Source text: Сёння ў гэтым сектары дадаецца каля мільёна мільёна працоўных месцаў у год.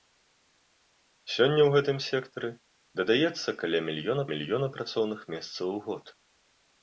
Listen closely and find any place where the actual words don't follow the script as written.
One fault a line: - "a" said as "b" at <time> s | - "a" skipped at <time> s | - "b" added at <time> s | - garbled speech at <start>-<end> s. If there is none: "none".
none